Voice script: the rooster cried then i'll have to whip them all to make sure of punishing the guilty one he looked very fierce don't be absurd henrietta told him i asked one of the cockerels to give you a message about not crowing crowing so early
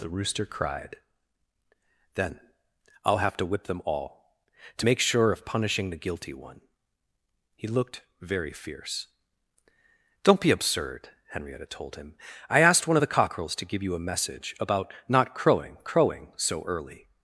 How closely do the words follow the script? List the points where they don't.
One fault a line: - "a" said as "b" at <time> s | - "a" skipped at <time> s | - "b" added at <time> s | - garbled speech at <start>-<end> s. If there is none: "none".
none